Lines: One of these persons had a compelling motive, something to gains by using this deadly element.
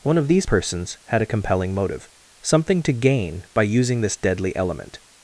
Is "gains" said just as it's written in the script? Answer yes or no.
no